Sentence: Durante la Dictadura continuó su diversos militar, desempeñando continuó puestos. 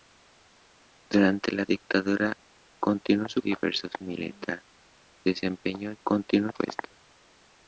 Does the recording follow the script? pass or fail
pass